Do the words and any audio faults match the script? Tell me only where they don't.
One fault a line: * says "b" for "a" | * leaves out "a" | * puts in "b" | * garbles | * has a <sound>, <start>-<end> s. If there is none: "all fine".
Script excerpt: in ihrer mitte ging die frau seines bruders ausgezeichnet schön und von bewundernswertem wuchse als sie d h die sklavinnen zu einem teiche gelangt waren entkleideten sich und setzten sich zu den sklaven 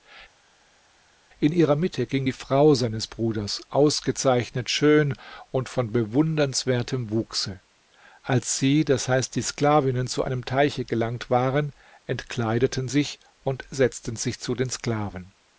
all fine